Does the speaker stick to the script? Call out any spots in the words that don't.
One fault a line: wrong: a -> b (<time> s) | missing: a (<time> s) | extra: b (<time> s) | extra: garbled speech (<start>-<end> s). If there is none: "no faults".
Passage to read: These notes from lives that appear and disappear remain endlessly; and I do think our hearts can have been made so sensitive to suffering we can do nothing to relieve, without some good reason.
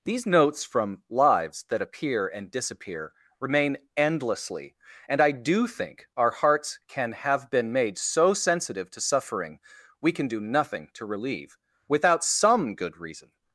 no faults